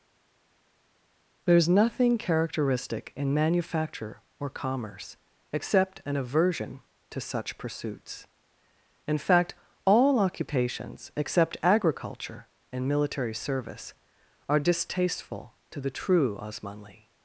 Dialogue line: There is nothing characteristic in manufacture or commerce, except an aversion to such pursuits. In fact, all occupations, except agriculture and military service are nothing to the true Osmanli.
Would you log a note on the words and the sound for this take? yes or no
yes